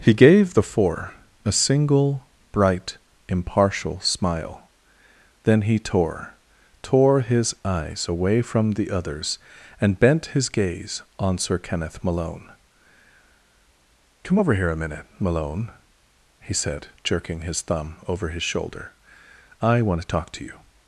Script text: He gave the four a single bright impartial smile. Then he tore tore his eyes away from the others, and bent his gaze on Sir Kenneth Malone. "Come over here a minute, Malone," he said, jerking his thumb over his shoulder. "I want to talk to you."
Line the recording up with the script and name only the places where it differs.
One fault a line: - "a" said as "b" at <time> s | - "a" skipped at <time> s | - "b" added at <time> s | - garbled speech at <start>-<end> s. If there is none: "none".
none